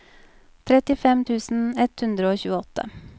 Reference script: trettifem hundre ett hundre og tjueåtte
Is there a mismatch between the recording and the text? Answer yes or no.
yes